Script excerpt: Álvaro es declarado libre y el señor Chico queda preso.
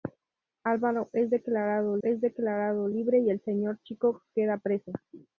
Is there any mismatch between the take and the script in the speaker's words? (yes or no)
yes